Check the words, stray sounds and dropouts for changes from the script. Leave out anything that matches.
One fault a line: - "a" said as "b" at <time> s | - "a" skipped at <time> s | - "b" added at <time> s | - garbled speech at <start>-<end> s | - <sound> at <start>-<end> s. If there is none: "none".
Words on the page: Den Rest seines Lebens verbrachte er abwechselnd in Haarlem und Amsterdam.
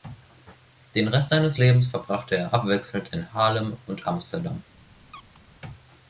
- squeak at 5.1-5.4 s